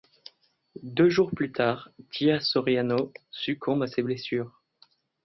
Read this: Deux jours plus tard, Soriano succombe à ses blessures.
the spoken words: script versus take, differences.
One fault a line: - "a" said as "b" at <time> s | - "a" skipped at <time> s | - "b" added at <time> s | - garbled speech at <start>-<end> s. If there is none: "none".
- "Gia" added at 2.1 s